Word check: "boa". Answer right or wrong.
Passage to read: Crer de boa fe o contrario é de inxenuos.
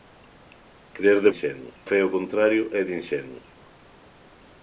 wrong